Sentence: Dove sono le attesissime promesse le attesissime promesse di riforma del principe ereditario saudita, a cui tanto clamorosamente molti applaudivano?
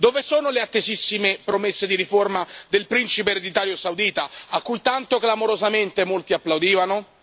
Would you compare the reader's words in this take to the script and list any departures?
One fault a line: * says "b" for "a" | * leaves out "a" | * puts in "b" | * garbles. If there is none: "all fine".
* leaves out "le attesissime promesse"